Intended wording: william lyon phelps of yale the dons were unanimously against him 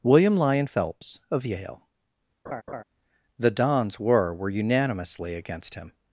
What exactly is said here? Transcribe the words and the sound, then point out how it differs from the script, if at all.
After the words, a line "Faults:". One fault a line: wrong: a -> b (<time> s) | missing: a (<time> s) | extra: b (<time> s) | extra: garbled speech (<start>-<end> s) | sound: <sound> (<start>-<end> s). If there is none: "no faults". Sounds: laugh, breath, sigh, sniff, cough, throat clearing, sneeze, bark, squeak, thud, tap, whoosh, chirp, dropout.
william lyon phelps of yale the dons were were unanimously against him
Faults:
sound: laugh (2.5-2.8 s)
extra: were (4.3 s)